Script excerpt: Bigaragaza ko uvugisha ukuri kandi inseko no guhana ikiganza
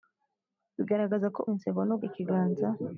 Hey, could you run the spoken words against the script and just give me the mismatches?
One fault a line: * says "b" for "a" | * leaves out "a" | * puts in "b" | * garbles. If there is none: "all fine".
* leaves out "uvugisha ukuri kandi"
* leaves out "guhana"